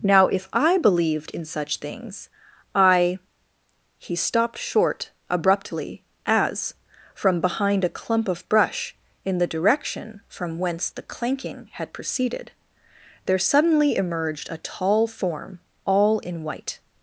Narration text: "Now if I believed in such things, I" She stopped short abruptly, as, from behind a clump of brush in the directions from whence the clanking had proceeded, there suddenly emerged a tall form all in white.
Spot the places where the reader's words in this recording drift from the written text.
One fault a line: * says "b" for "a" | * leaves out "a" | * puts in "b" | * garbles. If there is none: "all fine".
* says "He" for "She"
* says "direction" for "directions"